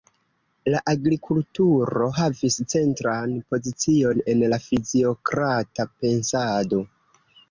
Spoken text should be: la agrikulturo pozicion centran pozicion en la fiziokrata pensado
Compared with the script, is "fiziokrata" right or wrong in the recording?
right